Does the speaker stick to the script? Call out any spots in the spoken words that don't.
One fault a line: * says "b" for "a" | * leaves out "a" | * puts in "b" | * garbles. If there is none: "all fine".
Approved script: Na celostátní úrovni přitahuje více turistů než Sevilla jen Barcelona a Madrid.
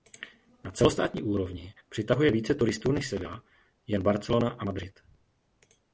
all fine